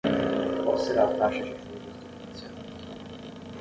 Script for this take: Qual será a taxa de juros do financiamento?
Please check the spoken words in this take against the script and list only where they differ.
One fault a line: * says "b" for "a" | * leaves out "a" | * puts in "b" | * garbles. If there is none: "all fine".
all fine